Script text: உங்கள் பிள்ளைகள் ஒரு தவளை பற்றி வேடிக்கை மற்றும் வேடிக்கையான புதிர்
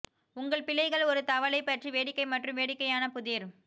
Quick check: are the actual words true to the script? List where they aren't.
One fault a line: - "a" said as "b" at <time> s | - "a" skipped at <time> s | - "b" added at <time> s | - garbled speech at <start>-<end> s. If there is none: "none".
none